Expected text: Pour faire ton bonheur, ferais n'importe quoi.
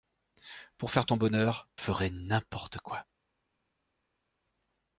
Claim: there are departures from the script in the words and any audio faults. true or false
false